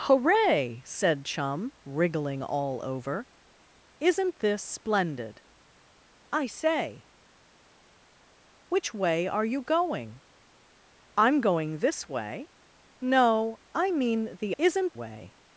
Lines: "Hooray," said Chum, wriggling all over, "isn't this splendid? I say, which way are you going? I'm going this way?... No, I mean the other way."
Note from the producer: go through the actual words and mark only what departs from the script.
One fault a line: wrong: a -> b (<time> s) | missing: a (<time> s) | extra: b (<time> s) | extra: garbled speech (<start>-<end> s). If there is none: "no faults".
wrong: other -> isn't (14.6 s)